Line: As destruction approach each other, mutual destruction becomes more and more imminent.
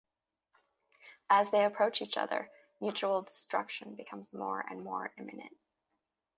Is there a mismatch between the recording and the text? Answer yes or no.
yes